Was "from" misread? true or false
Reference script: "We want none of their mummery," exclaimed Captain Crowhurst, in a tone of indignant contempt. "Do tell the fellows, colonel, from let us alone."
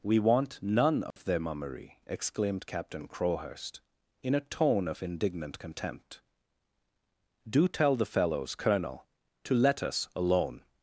true